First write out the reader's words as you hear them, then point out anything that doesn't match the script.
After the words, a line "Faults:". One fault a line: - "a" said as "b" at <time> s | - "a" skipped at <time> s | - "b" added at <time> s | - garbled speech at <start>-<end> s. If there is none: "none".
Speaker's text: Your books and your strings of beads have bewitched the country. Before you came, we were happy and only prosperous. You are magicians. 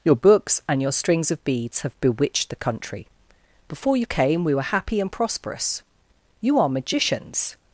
Your books and your strings of beads have bewitched the country. Before you came, we were happy and prosperous. You are magicians.
Faults:
- "only" skipped at 5.1 s